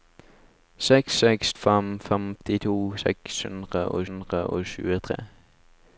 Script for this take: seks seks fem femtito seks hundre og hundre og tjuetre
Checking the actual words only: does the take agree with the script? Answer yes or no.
yes